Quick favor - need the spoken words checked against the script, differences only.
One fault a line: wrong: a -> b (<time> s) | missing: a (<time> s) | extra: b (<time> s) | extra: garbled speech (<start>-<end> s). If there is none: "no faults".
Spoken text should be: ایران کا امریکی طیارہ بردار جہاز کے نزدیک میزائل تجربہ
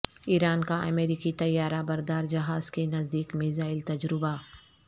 no faults